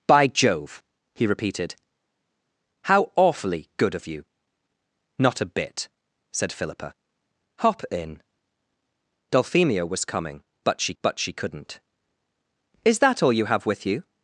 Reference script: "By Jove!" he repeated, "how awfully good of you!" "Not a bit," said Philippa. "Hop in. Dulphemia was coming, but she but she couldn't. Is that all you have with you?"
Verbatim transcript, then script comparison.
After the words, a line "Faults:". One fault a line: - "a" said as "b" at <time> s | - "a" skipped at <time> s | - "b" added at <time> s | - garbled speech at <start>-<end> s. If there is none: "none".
"By Jove!" he repeated, "how awfully good of you!" "Not a bit," said Philippa. "Hop in. Dulphemia was coming, but she but she couldn't. Is that all you have with you?"
Faults:
none